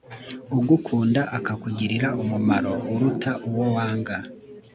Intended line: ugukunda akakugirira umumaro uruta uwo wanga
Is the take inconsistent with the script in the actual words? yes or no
no